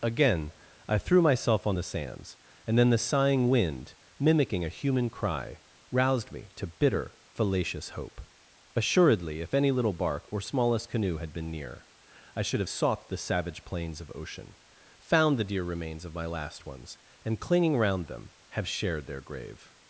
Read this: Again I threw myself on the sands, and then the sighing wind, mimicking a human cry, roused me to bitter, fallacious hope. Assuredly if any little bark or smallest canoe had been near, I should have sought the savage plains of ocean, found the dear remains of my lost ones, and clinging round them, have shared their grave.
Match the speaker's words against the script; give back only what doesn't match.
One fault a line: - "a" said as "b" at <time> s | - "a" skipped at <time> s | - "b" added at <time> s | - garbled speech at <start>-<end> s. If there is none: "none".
- "lost" said as "last" at 16.3 s